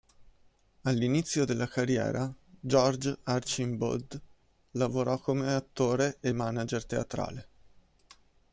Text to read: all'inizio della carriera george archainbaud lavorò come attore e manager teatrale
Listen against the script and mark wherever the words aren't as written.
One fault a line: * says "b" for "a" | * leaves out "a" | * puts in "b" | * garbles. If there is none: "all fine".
all fine